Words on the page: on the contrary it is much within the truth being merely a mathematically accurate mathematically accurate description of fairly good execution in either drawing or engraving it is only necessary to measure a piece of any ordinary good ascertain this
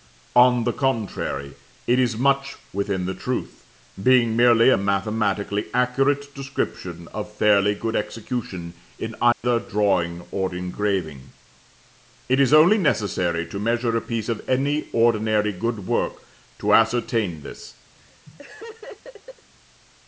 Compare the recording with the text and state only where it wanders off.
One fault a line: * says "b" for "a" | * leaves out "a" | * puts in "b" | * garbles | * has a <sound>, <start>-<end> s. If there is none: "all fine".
* leaves out "mathematically accurate"
* has a dropout, 9.3-9.4 s
* puts in "work to"
* has a laugh, 17.9-19.5 s